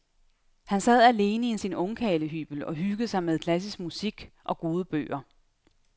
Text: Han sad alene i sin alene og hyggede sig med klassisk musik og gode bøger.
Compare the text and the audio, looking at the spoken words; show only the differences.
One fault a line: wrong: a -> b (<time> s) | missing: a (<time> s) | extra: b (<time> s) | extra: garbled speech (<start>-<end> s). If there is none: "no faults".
wrong: alene -> ungkarlehybel (1.7 s)